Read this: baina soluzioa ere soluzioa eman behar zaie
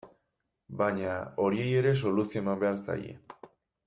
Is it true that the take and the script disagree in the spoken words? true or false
true